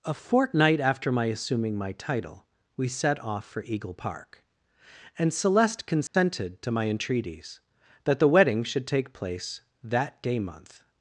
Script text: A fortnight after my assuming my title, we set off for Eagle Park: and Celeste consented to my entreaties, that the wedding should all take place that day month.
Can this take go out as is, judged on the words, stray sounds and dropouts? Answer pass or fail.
fail